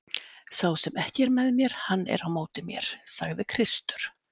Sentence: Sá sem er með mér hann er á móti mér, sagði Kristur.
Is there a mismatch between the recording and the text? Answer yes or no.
yes